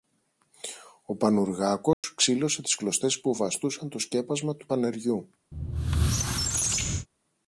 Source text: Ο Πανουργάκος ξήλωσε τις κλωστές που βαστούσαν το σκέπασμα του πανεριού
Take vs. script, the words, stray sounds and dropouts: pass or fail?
fail